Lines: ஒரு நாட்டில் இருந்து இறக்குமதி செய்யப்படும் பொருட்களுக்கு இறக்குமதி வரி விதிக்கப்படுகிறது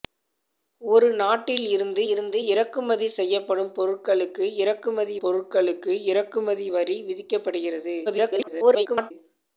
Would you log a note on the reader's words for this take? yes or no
yes